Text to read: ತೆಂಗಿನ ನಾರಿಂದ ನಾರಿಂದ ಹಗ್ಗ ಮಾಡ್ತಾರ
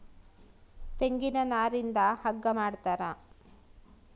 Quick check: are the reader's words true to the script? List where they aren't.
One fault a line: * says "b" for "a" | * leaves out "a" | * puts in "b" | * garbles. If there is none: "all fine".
* leaves out "ನಾರಿಂದ"